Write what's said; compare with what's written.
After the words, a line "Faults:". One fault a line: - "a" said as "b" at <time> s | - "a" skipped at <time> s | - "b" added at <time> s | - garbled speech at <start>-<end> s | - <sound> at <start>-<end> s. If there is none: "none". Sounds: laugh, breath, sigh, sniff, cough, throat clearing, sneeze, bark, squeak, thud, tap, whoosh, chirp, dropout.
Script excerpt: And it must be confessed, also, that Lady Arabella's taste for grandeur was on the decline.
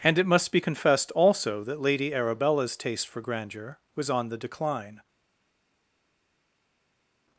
And it must be confessed, also, that Lady Arabella's taste for grandeur was on the decline.
Faults:
none